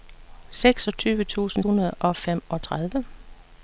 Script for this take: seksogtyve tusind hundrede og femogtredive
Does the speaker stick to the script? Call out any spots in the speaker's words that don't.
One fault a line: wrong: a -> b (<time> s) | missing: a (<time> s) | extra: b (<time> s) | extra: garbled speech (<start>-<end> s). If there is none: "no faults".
no faults